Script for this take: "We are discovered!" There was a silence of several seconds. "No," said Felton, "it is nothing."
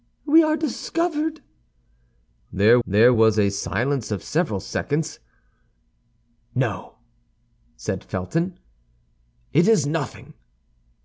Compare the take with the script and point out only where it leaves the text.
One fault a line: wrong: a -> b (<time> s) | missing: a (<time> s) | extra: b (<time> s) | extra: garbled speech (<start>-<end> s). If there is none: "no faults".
extra: there (2.9 s)